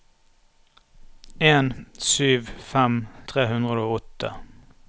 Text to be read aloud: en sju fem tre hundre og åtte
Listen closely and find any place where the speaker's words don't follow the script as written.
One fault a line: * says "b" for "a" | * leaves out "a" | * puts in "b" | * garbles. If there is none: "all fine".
all fine